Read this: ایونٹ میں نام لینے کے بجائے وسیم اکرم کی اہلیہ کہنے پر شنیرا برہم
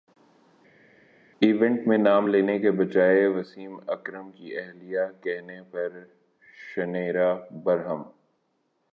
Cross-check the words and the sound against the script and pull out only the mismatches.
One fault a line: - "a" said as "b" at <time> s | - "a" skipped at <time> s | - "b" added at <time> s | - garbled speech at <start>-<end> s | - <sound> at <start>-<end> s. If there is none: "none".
none